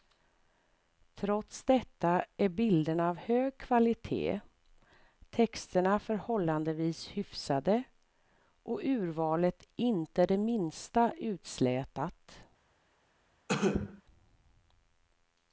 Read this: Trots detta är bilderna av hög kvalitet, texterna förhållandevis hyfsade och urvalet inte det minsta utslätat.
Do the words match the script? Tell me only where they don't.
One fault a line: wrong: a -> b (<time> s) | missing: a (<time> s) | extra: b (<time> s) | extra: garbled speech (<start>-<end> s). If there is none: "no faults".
no faults